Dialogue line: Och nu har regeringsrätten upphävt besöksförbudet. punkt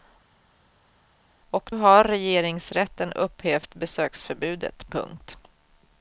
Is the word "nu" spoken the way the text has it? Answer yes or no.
no